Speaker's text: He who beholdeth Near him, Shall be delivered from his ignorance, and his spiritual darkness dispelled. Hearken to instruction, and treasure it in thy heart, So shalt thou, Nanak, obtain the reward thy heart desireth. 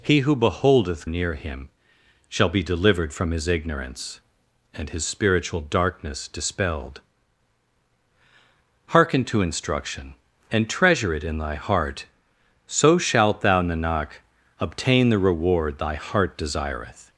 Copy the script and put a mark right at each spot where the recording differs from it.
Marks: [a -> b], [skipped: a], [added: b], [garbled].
He who beholdeth Near him, Shall be delivered from his ignorance, and his spiritual darkness dispelled. Hearken to instruction, and treasure it in thy heart, So shalt thou, Nanak, obtain the reward thy heart desireth.